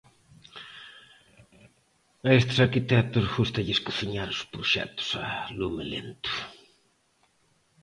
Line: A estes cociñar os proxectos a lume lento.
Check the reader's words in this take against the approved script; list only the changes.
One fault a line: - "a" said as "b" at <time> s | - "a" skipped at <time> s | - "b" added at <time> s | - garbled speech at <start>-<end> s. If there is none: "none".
- "arquitectos gústalles" added at 2.7 s